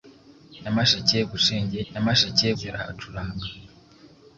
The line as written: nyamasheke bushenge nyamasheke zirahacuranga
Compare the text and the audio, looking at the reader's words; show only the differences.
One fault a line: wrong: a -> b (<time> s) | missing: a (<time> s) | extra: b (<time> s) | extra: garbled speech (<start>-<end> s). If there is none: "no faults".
no faults